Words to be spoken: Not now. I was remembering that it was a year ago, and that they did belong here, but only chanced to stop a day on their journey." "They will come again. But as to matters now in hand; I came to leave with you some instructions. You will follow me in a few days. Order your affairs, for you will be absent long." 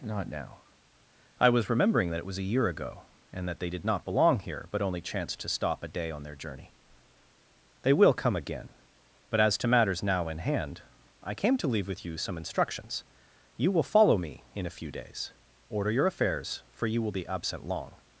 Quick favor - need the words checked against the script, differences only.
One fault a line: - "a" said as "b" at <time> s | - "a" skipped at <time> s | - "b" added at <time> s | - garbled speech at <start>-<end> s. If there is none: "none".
- "not" added at 3.9 s